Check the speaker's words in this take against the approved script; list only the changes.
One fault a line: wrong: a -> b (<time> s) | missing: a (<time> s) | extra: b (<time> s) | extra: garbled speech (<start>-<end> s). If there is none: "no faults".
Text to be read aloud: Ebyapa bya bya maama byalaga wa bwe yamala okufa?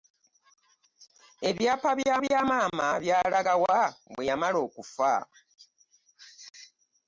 no faults